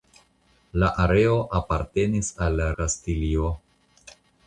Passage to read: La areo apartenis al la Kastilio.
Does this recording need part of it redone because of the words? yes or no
no